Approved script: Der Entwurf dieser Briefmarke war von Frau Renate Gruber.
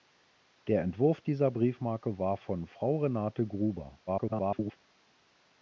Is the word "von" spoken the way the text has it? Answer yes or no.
yes